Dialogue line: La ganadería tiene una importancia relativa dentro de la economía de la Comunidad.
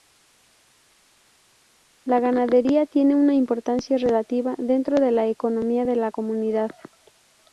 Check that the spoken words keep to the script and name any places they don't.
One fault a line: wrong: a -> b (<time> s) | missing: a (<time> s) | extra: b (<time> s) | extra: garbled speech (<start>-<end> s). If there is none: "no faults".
no faults